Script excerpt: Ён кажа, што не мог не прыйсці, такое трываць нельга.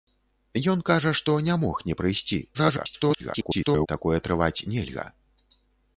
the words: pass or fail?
fail